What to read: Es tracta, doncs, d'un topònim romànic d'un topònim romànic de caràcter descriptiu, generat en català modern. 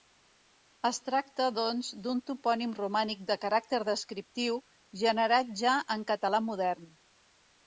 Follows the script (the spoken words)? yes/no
no